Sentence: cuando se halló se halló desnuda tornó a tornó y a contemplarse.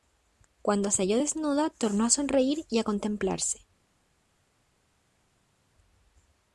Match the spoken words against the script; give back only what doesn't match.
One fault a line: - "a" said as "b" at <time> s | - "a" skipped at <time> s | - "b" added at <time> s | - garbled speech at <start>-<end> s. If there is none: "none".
- "se halló" skipped at 1.2 s
- "tornó" said as "sonreír" at 2.1 s